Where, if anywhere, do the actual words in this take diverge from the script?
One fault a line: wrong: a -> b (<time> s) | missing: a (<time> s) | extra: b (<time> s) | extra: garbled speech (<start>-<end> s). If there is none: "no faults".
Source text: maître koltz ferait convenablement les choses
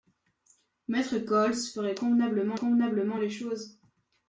extra: convenablement (2.5 s)